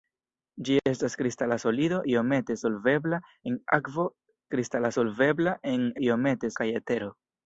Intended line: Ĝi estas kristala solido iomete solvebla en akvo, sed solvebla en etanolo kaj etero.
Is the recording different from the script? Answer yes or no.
yes